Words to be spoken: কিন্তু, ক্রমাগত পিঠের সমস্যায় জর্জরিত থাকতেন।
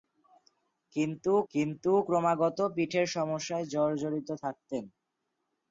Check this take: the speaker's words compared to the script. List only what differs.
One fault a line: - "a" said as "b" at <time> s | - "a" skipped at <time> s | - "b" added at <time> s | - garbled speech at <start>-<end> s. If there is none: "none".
- "কিন্তু" added at 1.5 s